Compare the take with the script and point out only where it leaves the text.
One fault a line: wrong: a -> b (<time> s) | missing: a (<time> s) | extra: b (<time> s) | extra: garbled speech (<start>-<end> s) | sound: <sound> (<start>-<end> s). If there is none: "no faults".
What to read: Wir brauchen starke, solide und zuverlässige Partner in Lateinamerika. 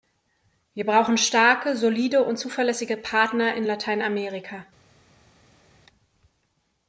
no faults